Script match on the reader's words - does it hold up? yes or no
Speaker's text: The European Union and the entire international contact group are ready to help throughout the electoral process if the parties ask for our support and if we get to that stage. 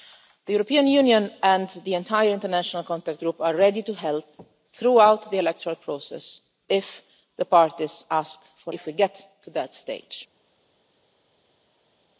no